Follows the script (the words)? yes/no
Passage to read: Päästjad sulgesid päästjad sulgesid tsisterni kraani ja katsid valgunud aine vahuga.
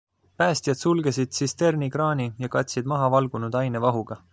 no